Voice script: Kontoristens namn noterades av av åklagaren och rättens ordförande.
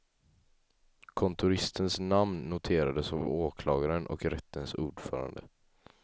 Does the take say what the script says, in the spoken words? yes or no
yes